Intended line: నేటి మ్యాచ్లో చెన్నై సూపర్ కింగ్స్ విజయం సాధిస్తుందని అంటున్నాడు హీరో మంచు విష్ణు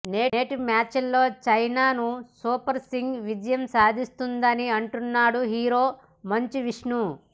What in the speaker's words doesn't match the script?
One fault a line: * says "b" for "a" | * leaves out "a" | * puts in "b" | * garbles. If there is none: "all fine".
all fine